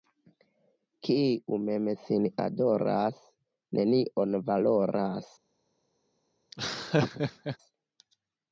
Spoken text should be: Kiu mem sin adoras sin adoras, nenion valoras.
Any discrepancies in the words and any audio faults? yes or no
yes